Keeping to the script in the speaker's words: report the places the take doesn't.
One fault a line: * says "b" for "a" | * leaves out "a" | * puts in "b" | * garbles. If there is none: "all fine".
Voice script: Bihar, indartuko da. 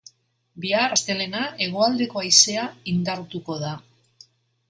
* puts in "astelehena hegoaldeko haizea"